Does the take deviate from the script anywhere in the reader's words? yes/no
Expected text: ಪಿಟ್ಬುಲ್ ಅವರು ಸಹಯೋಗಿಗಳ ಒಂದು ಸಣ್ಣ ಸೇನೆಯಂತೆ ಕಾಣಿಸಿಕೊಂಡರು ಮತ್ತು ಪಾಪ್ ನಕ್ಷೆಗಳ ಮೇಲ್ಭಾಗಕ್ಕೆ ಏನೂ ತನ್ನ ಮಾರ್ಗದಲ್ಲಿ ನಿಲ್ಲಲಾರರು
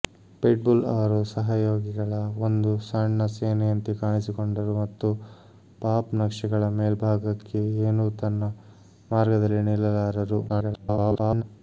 yes